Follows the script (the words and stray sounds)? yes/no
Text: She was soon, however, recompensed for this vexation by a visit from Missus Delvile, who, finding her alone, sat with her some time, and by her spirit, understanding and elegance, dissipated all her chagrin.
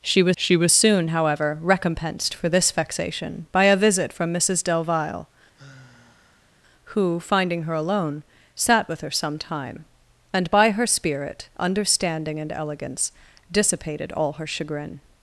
no